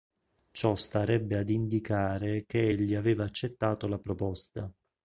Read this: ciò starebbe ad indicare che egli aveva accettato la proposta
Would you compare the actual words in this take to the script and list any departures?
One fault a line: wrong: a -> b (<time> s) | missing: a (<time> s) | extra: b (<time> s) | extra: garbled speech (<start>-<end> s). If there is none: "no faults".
no faults